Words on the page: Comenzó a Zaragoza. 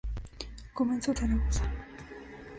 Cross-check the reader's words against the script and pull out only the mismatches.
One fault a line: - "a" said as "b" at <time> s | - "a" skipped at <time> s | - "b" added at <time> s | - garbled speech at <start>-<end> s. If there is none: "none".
none